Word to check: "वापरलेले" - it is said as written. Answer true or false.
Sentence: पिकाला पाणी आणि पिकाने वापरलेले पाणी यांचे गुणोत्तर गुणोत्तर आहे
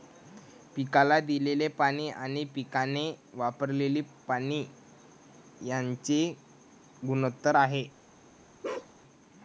true